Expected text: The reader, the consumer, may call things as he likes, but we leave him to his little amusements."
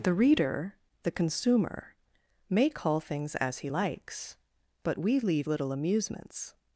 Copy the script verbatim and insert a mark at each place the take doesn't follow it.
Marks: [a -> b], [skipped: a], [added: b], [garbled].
The reader, the consumer, may call things as he likes, but we leave [skipped: him to his] little amusements."